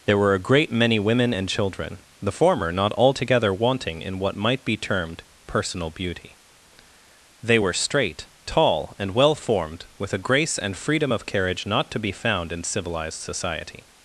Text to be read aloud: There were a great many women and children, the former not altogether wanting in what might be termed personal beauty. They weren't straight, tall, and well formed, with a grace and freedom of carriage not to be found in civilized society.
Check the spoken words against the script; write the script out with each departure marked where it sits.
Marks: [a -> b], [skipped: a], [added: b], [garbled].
There were a great many women and children, the former not altogether wanting in what might be termed personal beauty. They [weren't -> were] straight, tall, and well formed, with a grace and freedom of carriage not to be found in civilized society.